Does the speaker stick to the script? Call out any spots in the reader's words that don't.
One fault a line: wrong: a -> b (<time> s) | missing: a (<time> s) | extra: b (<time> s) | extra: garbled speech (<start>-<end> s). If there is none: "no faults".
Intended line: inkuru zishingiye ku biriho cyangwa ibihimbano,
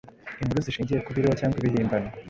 no faults